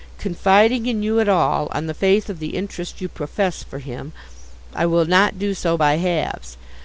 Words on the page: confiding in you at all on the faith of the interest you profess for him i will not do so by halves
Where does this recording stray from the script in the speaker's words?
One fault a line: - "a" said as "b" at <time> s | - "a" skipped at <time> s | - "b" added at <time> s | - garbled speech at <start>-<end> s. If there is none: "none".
none